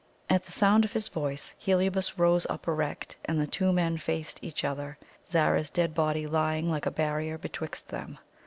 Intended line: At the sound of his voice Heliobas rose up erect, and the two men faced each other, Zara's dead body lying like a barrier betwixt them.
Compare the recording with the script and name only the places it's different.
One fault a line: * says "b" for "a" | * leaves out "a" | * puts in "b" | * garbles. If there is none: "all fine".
all fine